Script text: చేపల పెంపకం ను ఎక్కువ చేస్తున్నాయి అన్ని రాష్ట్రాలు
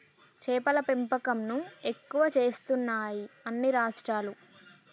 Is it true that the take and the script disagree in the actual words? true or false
false